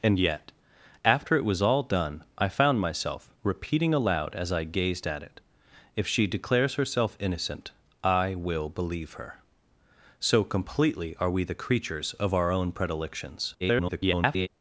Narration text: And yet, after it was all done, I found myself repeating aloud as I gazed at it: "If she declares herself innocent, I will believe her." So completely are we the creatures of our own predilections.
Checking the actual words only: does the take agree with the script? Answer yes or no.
no